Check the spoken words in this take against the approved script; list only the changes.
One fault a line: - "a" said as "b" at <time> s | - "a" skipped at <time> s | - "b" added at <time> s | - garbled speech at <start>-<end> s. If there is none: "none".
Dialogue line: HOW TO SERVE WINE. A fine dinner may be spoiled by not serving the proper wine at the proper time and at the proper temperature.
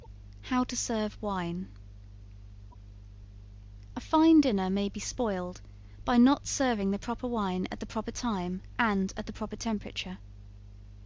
none